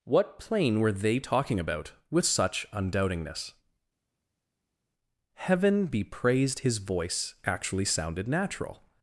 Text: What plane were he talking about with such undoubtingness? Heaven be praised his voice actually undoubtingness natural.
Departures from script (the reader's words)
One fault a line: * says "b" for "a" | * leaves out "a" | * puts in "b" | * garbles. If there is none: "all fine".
* says "they" for "he"
* says "sounded" for "undoubtingness"